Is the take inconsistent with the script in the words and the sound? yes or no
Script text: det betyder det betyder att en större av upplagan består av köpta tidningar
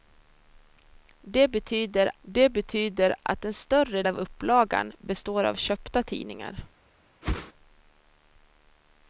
yes